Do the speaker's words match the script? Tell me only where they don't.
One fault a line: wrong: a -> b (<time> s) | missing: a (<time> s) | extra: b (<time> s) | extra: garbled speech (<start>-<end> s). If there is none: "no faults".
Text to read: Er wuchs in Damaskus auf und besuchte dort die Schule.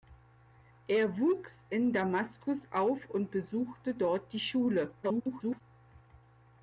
extra: garbled speech (5.0-5.6 s)